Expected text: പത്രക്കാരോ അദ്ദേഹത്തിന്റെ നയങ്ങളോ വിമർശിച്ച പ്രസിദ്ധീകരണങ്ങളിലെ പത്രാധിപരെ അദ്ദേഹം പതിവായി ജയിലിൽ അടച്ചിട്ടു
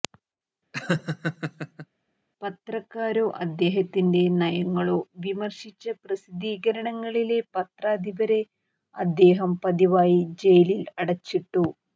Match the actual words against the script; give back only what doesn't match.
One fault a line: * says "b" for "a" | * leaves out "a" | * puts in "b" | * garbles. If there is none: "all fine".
all fine